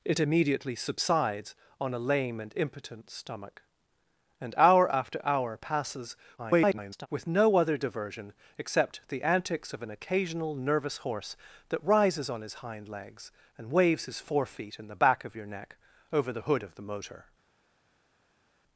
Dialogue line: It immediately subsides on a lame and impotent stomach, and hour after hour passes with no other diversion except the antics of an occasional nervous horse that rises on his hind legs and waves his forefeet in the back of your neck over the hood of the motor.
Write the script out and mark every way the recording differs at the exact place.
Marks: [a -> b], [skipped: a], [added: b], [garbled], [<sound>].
It immediately subsides on a lame and impotent stomach, and hour after hour passes [garbled] with no other diversion except the antics of an occasional nervous horse that rises on his hind legs and waves his forefeet in the back of your neck over the hood of the motor.